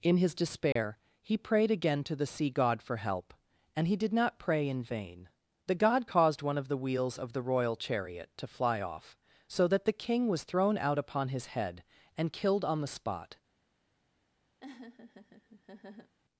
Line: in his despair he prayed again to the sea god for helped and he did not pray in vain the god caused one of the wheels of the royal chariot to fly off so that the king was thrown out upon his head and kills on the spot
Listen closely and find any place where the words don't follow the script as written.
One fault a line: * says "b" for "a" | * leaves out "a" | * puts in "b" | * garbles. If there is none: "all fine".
* says "help" for "helped"
* says "killed" for "kills"